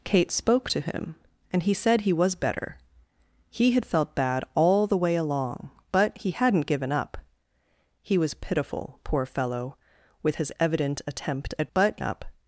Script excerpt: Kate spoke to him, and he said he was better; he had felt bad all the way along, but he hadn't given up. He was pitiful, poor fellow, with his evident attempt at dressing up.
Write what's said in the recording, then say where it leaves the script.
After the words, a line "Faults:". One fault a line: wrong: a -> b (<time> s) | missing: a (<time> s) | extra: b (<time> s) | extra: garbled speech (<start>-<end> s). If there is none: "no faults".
Kate spoke to him, and he said he was better; he had felt bad all the way along, but he hadn't given up. He was pitiful, poor fellow, with his evident attempt at but up.
Faults:
wrong: dressing -> but (11.7 s)